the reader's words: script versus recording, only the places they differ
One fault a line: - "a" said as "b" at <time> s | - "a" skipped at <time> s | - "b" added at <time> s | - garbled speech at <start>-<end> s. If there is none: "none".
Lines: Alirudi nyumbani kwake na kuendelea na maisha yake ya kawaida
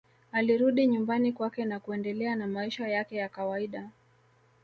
none